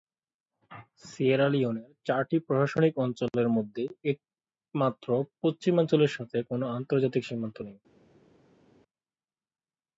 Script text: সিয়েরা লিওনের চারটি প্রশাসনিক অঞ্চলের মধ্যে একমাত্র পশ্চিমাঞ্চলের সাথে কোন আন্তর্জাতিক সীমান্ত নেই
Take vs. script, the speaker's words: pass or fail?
pass